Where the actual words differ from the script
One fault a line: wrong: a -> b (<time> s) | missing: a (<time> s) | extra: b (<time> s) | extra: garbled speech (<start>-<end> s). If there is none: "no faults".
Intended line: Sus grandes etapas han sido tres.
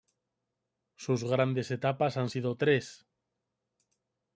no faults